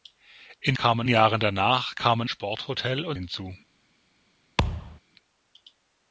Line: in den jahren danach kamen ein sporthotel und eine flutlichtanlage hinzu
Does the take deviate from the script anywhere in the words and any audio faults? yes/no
yes